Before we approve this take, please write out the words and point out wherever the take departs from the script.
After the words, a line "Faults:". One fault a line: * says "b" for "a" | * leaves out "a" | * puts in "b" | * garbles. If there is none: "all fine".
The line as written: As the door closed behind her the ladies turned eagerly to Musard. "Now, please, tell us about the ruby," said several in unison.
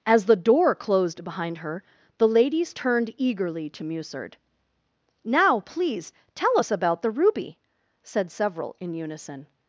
As the door closed behind her the ladies turned eagerly to Musard. "Now, please, tell us about the ruby," said several in unison.
Faults:
all fine